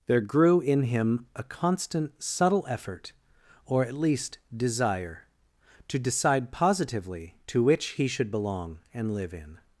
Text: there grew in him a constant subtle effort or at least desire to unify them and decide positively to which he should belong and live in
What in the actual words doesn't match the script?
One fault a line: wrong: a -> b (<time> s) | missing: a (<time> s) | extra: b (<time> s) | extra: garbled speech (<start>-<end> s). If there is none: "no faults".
missing: unify them and (6.0 s)